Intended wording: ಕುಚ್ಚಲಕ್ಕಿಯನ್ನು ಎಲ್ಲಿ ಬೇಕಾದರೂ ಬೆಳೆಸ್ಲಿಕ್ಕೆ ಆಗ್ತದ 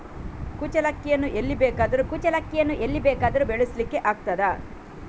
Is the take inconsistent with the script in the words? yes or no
yes